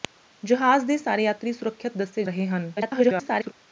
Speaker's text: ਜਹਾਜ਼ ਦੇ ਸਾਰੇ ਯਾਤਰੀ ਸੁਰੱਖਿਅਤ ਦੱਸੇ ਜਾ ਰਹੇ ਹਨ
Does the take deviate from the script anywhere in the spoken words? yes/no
yes